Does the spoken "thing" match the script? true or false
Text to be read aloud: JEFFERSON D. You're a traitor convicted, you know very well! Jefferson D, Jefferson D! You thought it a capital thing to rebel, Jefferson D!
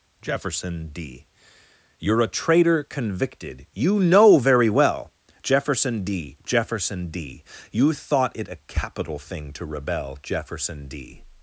true